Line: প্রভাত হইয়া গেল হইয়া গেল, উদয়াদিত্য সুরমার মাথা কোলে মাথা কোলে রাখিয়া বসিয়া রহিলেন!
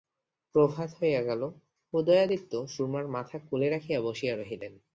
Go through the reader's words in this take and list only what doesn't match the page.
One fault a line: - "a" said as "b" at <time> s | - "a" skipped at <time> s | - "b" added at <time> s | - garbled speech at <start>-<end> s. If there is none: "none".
- "হইয়া গেল" skipped at 1.4 s
- "মাথা কোলে" skipped at 3.7 s